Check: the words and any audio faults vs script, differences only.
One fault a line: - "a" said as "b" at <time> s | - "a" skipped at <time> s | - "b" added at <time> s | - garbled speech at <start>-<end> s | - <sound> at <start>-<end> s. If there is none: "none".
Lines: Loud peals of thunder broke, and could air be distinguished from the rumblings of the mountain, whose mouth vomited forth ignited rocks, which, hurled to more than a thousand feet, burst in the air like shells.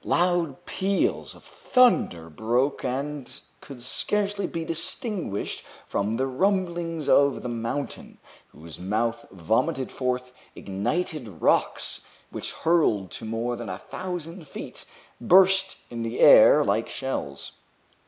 - "air" said as "scarcely" at 3.8 s